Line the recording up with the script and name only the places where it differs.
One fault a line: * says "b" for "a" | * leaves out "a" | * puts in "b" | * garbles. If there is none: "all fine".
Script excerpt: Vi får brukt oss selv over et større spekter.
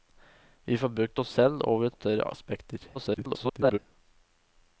* garbles